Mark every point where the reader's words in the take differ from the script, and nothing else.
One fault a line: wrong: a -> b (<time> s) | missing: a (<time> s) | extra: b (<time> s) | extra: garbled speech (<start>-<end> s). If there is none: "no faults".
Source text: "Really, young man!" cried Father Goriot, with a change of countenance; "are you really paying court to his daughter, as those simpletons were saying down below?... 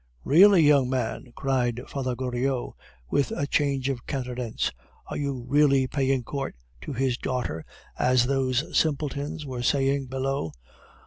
missing: down (10.1 s)